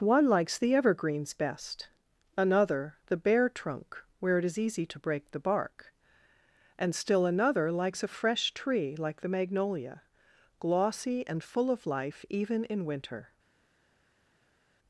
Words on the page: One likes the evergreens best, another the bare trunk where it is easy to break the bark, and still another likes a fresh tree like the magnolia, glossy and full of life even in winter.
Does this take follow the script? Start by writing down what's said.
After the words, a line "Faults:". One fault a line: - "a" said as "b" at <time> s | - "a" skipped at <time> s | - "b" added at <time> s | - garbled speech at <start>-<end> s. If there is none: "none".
One likes the evergreens best, another the bare trunk where it is easy to break the bark, and still another likes a fresh tree like the magnolia, glossy and full of life even in winter.
Faults:
none